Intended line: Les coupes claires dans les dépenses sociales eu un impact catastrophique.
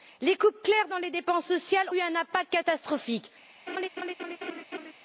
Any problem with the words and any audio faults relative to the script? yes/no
yes